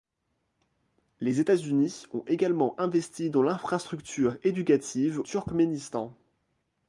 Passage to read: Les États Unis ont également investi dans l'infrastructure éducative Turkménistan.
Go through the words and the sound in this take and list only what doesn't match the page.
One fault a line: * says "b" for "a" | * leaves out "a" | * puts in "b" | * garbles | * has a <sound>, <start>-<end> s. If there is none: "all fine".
all fine